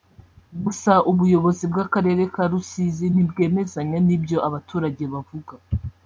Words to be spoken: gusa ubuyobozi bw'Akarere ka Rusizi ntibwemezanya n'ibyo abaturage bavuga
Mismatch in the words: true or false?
false